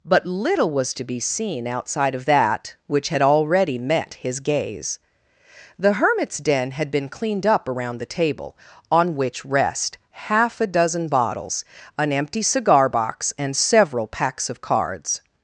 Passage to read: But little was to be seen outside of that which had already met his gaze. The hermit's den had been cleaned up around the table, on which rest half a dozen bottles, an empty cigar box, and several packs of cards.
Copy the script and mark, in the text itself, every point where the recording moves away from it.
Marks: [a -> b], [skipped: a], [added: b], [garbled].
But little was to be seen outside of that which had already met his gaze. The hermit's den had been cleaned up around the table, on which rest half a dozen bottles, an empty cigar box, and several packs of cards.